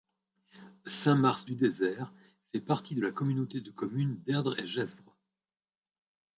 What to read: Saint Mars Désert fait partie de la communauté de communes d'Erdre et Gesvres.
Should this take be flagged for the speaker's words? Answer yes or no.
yes